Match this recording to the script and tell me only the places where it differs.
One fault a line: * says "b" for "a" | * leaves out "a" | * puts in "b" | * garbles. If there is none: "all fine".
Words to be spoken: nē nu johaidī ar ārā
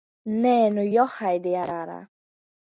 all fine